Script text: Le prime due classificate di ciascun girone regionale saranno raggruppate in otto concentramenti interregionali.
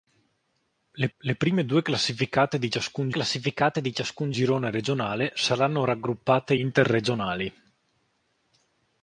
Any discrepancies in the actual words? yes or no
yes